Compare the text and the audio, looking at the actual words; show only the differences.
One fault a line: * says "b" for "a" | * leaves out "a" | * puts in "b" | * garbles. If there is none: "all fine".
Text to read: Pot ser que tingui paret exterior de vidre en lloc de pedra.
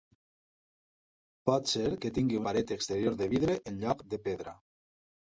all fine